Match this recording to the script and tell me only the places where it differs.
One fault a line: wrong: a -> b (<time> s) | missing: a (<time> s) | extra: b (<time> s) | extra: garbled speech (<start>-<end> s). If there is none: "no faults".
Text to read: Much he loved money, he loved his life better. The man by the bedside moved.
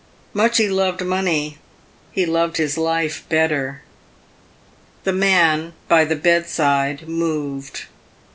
no faults